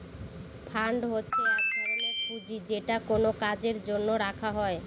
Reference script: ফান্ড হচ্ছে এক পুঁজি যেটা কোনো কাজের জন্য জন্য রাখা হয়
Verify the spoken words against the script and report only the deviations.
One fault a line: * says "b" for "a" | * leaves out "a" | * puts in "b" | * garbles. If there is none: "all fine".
* puts in "ধরনের"
* leaves out "জন্য"